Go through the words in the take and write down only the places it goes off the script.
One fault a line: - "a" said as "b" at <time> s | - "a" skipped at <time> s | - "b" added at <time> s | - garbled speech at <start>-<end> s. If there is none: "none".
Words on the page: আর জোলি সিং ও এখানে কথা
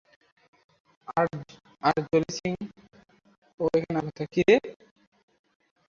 none